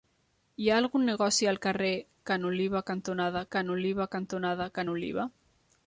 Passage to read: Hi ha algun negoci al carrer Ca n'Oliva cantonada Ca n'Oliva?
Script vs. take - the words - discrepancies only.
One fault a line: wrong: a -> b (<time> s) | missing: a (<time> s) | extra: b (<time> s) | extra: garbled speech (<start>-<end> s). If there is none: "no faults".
extra: cantonada Ca n'Oliva (4.1 s)